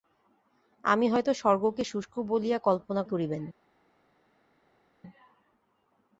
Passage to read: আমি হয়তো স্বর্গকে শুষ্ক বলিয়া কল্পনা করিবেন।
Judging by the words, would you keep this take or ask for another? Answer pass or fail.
pass